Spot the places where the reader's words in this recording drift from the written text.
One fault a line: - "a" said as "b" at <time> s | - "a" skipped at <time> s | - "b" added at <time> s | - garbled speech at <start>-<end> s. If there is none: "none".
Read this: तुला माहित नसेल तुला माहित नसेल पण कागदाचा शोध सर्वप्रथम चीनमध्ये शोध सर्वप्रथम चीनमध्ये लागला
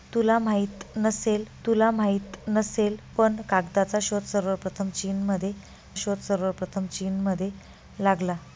none